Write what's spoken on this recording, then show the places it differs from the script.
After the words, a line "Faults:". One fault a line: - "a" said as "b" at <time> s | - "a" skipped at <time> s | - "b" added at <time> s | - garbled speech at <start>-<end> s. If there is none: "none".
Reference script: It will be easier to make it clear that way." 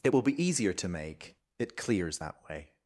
It will be easier to make it clears that way."
Faults:
- "clear" said as "clears" at 1.8 s